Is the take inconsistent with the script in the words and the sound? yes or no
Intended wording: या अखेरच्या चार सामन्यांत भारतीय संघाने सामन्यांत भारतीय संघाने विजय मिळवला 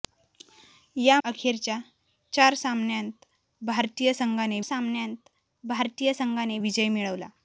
no